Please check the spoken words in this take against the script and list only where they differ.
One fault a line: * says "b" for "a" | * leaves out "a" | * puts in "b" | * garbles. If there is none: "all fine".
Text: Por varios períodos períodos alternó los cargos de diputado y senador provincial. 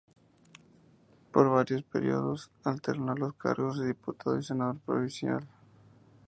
* leaves out "períodos"